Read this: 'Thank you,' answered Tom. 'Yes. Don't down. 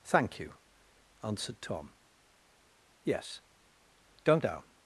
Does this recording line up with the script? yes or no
yes